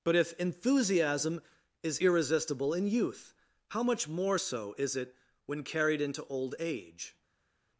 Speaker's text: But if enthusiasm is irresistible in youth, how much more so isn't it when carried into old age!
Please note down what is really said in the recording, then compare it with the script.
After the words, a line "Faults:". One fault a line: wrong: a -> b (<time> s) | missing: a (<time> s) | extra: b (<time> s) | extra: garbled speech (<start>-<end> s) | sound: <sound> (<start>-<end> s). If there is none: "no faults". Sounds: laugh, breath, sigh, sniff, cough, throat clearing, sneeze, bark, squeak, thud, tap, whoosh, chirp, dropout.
But if enthusiasm is irresistible in youth, how much more so is it when carried into old age!
Faults:
wrong: isn't -> is (4.8 s)